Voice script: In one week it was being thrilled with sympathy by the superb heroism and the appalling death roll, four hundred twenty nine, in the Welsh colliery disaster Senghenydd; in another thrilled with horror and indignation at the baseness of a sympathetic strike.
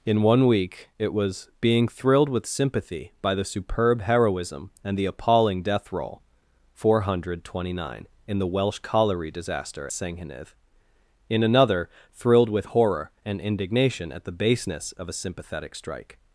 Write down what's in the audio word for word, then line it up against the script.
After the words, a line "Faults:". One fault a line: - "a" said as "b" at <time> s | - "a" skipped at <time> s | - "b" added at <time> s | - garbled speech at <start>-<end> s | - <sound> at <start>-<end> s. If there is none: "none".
In one week it was being thrilled with sympathy by the superb heroism and the appalling death roll, four hundred twenty nine, in the Welsh colliery disaster Senghenydd; in another thrilled with horror and indignation at the baseness of a sympathetic strike.
Faults:
none